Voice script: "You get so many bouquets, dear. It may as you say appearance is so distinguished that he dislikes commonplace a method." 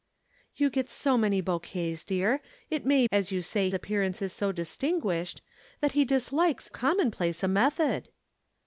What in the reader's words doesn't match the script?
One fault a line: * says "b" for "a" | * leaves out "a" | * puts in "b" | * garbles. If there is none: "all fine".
all fine